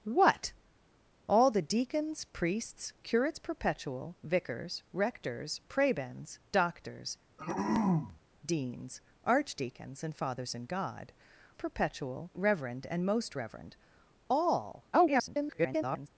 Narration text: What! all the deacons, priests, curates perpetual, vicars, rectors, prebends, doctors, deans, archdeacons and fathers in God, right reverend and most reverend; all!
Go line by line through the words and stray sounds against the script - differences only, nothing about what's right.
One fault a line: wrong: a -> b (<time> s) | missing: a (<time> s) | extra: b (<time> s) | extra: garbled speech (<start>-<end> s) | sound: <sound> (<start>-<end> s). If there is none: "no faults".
sound: throat clearing (7.4-8.2 s)
wrong: right -> perpetual (11.5 s)
extra: garbled speech (14.9-16.1 s)